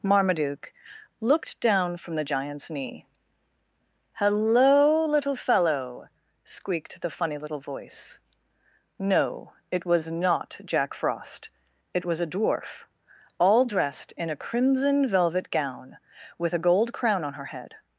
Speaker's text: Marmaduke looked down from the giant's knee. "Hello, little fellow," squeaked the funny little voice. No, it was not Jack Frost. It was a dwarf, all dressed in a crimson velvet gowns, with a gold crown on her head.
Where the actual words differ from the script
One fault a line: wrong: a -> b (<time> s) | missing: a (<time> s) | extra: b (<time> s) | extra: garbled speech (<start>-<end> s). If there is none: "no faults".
wrong: gowns -> gown (15.5 s)